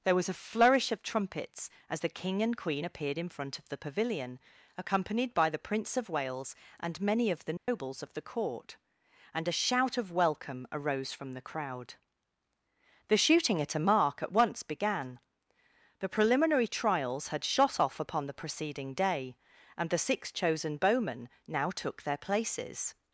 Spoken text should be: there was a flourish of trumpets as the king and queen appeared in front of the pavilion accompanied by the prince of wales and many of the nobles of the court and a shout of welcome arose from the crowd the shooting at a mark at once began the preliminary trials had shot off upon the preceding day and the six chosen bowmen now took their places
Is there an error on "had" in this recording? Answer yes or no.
no